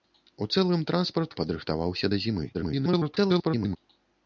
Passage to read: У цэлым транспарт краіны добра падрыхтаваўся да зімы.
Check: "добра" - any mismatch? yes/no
yes